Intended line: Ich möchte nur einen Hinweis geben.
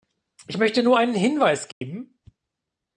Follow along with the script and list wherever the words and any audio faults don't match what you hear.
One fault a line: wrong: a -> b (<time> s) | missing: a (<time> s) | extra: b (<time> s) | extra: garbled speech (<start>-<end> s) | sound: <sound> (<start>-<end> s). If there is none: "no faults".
sound: dropout (1.7-1.8 s)